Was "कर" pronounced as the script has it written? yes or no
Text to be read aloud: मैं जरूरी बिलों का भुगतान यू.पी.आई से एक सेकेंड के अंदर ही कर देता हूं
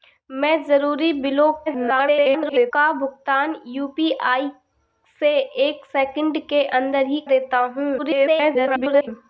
no